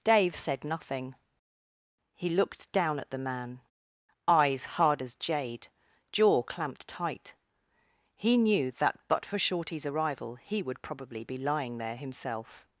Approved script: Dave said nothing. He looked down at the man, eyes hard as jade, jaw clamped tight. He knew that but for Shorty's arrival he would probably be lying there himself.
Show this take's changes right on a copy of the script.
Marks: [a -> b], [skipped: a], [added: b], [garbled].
Dave said nothing. He looked down at the man, eyes hard as jade, jaw clamped tight. He knew that but for Shorty's arrival he would probably be lying there himself.